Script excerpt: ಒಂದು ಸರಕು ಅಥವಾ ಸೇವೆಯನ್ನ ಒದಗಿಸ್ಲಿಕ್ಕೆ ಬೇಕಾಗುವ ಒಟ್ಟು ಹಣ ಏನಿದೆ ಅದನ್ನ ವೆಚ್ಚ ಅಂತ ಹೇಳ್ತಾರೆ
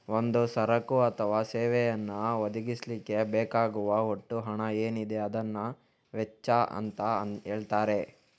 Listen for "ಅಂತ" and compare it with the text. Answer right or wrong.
right